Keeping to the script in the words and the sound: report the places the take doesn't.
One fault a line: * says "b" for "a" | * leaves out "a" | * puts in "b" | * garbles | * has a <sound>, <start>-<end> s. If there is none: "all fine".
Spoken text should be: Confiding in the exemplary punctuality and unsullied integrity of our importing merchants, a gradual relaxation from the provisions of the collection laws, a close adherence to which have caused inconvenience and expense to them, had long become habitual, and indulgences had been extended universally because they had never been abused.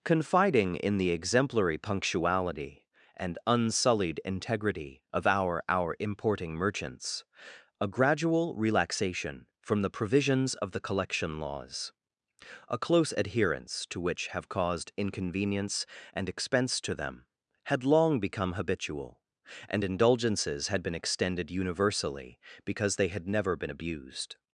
* puts in "our"